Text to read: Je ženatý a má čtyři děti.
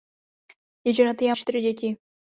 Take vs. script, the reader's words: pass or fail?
fail